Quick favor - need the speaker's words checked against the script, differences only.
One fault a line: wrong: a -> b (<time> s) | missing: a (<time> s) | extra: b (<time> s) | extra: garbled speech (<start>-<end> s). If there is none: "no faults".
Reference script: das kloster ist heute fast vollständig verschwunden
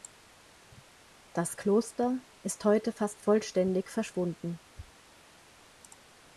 no faults